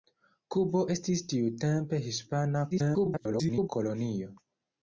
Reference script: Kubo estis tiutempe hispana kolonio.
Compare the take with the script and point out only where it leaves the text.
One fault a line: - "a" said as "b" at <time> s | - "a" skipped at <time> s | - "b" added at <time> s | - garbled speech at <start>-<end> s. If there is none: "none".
- garbled speech at 2.7-3.7 s